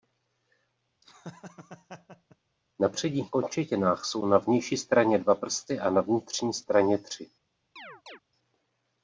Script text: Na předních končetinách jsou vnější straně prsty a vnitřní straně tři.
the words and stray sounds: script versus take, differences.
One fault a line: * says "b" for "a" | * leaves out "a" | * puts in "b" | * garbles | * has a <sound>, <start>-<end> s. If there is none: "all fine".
* has a laugh, 1.0-2.4 s
* puts in "na"
* puts in "dva"
* puts in "na"
* has a chirp, 7.8-8.2 s